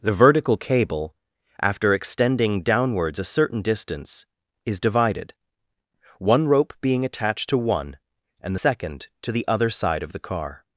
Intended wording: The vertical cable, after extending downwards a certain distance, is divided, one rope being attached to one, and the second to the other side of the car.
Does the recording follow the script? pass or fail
fail